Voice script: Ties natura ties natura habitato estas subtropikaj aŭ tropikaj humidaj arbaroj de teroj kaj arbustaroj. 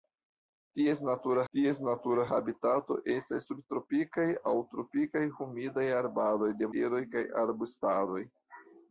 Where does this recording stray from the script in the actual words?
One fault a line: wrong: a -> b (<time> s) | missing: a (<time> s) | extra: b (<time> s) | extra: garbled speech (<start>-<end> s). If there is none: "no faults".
no faults